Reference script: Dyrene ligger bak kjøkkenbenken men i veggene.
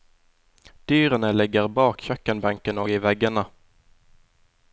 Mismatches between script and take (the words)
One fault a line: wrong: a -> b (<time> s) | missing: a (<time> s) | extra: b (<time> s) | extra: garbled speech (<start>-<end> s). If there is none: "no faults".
wrong: men -> og (2.8 s)